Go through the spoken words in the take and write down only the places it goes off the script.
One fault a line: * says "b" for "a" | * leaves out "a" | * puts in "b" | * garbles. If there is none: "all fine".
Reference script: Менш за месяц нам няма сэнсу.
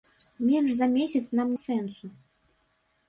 * leaves out "няма"